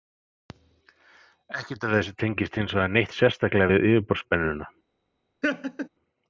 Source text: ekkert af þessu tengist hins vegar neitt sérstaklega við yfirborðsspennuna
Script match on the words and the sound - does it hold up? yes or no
no